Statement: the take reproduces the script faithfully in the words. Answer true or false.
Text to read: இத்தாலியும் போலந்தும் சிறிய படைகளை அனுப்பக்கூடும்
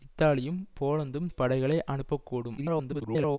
false